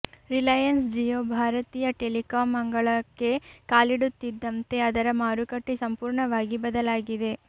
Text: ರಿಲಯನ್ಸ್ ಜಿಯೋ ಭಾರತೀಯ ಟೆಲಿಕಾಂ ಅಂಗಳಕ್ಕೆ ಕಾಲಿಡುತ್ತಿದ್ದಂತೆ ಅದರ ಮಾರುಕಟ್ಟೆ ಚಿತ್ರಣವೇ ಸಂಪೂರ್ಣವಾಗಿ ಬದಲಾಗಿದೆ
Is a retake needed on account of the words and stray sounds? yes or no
yes